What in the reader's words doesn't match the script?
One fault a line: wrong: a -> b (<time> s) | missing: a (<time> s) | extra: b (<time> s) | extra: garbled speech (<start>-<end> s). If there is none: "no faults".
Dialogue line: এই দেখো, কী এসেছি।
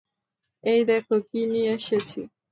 extra: নিয়ে (1.5 s)